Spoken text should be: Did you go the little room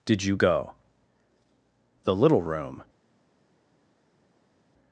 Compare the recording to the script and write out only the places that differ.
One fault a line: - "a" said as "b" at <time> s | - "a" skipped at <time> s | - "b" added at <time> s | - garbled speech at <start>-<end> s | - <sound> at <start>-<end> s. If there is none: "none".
none